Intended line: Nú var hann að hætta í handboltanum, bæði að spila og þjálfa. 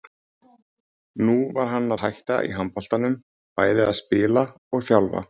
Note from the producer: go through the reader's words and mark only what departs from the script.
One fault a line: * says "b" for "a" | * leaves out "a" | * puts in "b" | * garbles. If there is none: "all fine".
* leaves out "að"